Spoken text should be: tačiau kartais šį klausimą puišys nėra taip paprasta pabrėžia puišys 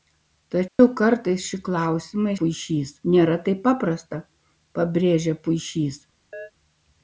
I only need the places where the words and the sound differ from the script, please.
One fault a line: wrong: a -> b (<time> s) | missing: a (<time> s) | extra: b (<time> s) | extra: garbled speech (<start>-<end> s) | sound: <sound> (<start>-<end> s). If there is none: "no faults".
sound: dropout (0.7-0.8 s)
sound: chirp (6.3-6.5 s)